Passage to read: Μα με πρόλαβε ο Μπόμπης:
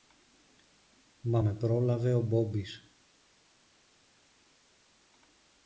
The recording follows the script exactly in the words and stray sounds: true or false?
true